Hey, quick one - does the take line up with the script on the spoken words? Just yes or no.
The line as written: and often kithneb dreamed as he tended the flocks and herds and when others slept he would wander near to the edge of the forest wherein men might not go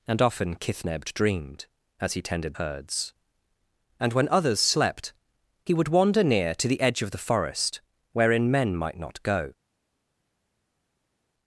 no